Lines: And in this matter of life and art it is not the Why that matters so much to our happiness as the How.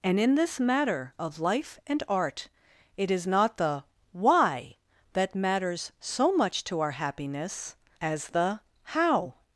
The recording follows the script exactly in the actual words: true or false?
true